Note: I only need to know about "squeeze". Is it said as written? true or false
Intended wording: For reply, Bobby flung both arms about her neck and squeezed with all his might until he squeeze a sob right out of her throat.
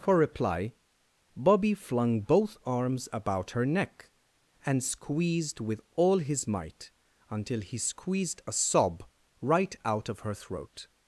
false